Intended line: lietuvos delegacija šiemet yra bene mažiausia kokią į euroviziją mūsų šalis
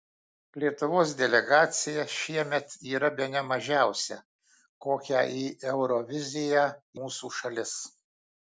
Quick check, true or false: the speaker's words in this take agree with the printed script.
true